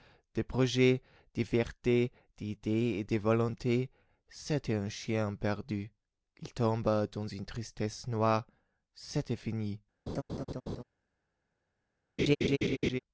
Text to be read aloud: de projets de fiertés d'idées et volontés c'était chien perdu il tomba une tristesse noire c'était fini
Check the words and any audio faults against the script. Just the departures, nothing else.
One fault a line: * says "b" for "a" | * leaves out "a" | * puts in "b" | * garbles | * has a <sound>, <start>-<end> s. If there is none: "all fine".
* puts in "de"
* puts in "un"
* puts in "dans"
* has a laugh, 10.1-10.8 s
* has a laugh, 12.2-13.0 s